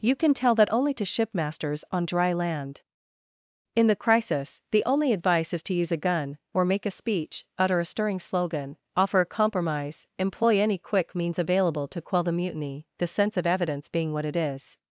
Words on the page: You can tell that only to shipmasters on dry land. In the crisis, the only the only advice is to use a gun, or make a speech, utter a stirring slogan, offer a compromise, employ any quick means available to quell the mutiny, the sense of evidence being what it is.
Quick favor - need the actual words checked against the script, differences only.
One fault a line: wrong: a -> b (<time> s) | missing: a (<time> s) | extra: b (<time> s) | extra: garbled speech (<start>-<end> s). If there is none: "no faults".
missing: the only (5.1 s)